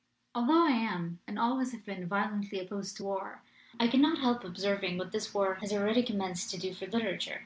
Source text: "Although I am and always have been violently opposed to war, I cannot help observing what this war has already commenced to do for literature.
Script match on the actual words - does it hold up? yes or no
yes